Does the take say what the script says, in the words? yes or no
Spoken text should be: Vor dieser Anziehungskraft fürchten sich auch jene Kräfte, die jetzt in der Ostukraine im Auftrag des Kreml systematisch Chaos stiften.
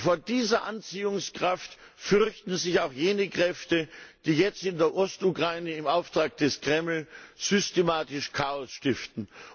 yes